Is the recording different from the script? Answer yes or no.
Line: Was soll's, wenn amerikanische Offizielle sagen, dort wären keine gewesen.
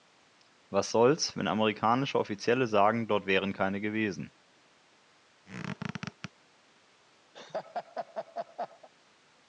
no